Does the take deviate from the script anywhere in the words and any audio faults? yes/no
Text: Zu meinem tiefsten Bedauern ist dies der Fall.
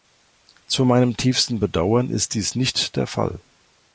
yes